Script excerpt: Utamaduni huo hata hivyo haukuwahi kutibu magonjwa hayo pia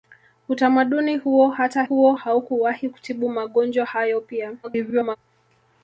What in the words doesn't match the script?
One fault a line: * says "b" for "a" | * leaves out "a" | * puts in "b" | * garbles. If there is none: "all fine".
* says "huo" for "hivyo"
* garbles